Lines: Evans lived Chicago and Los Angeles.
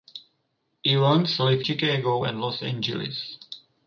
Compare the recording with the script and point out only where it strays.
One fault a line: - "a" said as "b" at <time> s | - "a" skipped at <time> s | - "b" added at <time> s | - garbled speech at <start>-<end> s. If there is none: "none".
none